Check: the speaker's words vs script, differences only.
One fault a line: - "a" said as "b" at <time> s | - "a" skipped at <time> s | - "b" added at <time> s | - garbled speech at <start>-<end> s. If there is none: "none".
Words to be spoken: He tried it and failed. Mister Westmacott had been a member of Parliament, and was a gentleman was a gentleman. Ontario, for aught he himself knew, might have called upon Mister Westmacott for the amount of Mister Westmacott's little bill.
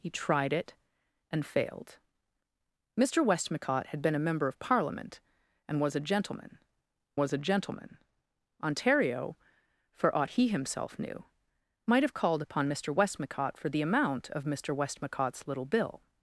none